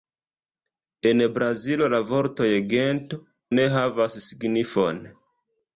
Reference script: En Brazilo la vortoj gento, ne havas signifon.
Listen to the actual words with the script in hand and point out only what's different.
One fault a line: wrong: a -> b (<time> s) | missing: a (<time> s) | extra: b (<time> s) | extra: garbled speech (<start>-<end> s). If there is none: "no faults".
no faults